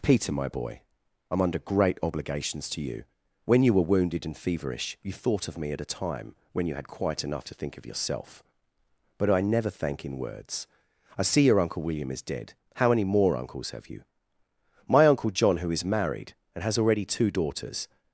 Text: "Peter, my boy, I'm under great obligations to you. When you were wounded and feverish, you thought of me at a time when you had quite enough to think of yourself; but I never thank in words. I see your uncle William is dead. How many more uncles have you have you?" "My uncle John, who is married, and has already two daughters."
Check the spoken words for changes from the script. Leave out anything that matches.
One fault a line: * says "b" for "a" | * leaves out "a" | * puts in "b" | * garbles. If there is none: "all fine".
* leaves out "have you"